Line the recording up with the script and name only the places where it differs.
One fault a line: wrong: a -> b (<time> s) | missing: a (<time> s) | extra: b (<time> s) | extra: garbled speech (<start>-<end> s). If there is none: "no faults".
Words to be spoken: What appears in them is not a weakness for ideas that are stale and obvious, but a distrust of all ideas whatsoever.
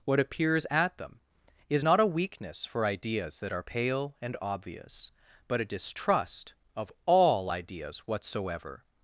wrong: in -> at (0.7 s)
wrong: stale -> pale (3.6 s)